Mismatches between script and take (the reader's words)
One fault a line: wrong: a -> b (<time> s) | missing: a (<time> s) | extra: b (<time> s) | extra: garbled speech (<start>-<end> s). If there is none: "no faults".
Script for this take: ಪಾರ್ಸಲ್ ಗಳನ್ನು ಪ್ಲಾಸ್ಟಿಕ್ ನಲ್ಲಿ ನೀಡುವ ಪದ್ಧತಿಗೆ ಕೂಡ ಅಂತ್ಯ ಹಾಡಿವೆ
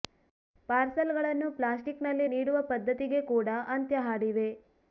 no faults